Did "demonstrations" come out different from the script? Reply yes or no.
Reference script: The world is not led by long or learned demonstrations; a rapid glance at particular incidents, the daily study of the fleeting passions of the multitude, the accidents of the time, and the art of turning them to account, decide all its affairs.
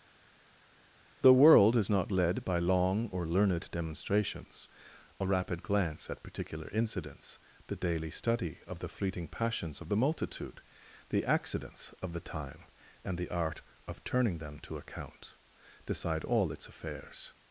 no